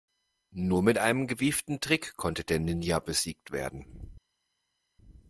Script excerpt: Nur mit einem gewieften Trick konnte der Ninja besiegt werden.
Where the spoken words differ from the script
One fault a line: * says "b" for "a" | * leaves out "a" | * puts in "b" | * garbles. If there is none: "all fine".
all fine